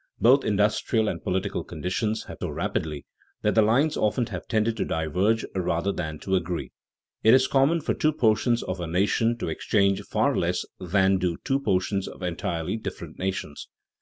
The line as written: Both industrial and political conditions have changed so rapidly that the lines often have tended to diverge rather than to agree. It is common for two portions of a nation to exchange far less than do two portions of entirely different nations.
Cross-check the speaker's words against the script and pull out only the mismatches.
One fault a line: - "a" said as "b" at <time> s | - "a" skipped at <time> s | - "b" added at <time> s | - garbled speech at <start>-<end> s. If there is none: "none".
- "changed" skipped at 2.4 s